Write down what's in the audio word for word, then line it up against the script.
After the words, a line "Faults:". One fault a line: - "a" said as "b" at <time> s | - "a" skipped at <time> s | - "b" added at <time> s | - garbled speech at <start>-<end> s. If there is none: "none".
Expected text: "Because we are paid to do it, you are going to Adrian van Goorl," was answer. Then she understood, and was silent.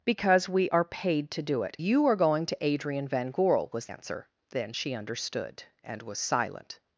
"Because we are paid to do it, you are going to Adrian van Goorl," was answer. Then she understood, and was silent.
Faults:
none